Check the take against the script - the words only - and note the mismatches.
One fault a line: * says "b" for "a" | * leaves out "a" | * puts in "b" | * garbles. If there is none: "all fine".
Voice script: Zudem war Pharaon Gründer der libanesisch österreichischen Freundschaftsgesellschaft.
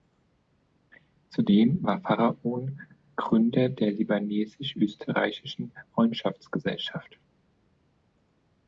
all fine